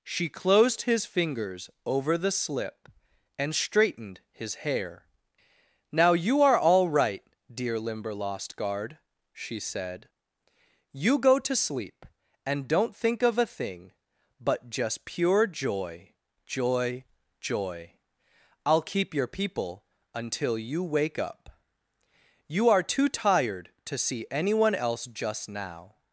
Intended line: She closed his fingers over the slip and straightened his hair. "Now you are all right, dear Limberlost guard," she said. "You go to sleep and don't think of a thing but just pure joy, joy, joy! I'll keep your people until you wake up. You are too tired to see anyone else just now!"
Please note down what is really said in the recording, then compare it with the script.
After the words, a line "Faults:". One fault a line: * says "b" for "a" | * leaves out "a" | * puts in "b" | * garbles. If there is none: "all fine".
She closed his fingers over the slip and straightened his hair. "Now you are all right, dear Limberlost guard," she said. "You go to sleep and don't think of a thing but just pure joy, joy, joy! I'll keep your people until you wake up. You are too tired to see anyone else just now!"
Faults:
all fine